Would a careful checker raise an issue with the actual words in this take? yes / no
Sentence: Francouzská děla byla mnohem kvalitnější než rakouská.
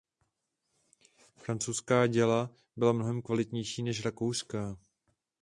no